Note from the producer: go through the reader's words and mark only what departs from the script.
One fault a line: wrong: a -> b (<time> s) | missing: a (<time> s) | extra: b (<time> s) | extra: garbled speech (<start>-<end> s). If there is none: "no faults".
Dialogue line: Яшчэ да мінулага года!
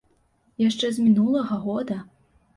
wrong: да -> з (0.9 s)